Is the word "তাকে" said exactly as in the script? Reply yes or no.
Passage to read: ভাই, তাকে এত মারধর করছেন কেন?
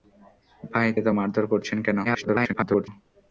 no